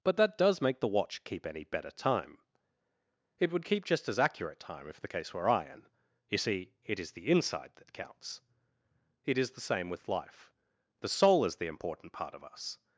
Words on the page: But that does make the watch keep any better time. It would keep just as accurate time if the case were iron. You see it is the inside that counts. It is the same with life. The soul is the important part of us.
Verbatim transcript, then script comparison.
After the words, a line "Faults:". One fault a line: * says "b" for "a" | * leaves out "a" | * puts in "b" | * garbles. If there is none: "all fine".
But that does make the watch keep any better time. It would keep just as accurate time if the case were iron. You see it is the inside that counts. It is the same with life. The soul is the important part of us.
Faults:
all fine